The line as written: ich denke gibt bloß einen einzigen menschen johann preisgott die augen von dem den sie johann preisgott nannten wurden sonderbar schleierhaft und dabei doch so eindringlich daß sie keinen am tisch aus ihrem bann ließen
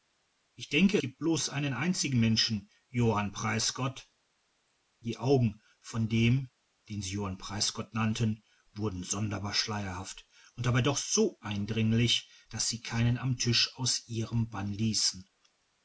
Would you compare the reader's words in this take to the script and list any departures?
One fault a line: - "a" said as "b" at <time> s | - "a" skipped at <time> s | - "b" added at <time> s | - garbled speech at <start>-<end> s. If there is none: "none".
none